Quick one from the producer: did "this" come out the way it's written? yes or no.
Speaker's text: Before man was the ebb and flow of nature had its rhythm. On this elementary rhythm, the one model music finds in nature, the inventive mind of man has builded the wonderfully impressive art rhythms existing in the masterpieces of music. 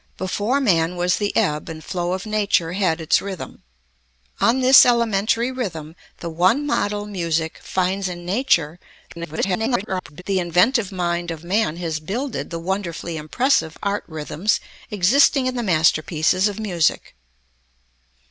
yes